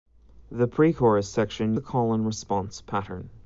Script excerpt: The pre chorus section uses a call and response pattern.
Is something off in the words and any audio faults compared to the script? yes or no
yes